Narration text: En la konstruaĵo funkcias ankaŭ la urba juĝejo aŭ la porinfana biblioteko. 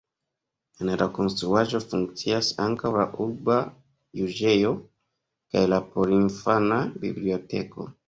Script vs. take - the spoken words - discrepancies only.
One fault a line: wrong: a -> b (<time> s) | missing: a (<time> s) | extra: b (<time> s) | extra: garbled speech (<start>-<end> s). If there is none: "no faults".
wrong: aŭ -> kaj (5.5 s)